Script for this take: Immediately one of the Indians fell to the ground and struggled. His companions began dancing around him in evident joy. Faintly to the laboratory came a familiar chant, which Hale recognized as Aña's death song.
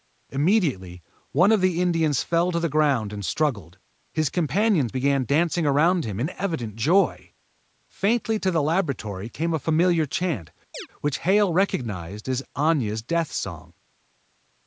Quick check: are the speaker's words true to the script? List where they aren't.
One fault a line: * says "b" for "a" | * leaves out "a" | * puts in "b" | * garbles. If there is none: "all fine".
all fine